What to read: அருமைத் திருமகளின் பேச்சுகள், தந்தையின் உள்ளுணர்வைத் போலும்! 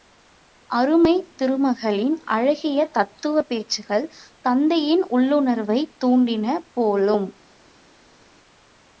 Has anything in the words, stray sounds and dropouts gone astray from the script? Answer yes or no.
yes